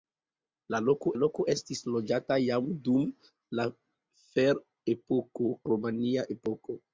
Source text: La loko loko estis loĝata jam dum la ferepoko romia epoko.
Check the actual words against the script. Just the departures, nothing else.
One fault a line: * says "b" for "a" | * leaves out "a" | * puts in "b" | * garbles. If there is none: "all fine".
all fine